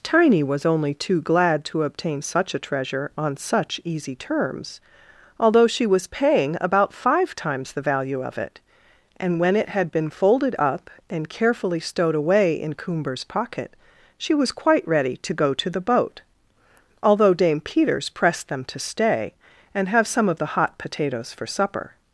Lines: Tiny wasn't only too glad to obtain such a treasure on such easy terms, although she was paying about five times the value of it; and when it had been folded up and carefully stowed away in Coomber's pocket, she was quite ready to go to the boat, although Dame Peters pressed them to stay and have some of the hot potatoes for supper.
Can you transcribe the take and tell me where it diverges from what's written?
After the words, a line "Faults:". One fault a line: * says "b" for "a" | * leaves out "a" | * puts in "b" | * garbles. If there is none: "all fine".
Tiny was only too glad to obtain such a treasure on such easy terms, although she was paying about five times the value of it; and when it had been folded up and carefully stowed away in Coomber's pocket, she was quite ready to go to the boat, although Dame Peters pressed them to stay and have some of the hot potatoes for supper.
Faults:
* says "was" for "wasn't"